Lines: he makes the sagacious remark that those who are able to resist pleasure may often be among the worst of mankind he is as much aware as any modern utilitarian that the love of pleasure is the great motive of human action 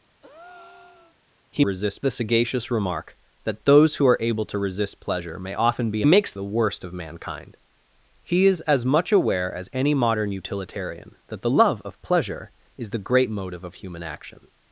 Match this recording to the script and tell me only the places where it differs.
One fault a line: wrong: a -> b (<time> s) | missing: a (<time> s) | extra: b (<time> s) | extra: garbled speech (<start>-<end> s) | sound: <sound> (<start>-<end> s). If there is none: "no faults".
sound: breath (0.2-1.2 s)
wrong: makes -> resist (1.6 s)
wrong: among -> makes (6.0 s)